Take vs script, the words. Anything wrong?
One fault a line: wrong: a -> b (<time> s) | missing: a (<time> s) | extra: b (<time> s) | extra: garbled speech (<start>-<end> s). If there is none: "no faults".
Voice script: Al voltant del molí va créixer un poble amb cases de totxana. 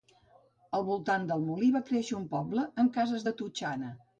no faults